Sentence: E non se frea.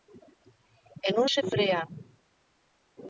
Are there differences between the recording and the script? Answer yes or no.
no